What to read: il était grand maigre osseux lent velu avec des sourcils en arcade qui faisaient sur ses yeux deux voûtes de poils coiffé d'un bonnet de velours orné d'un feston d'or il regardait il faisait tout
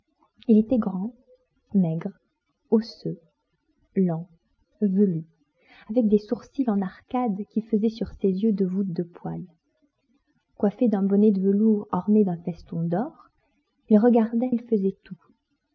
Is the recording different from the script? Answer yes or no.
no